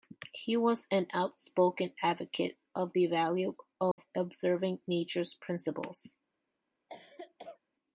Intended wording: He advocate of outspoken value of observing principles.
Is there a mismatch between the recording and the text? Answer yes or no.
yes